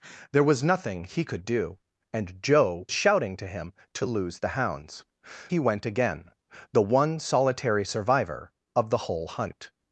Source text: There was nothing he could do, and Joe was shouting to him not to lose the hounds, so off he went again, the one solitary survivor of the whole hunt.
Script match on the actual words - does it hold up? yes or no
no